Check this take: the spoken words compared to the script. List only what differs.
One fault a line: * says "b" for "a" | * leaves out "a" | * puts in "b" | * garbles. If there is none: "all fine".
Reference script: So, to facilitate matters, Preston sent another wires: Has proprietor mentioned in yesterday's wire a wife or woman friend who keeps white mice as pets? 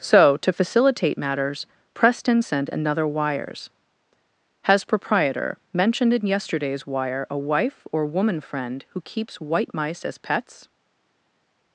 all fine